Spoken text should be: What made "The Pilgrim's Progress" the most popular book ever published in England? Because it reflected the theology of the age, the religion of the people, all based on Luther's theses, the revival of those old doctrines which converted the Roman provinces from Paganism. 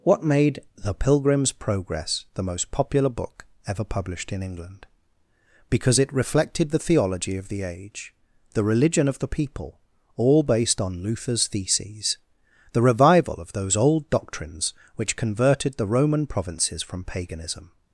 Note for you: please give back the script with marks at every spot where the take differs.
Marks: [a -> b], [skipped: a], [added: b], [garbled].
What made "The Pilgrim's Progress" the most popular book ever published in England? Because it reflected the theology of the age, the religion of the people, all based on Luther's theses, the revival of those old doctrines which converted the Roman provinces from Paganism.